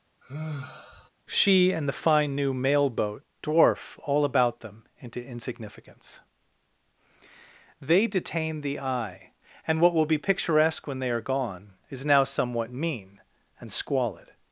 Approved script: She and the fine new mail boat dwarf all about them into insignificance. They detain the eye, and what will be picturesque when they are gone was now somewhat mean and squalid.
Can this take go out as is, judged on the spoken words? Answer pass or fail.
fail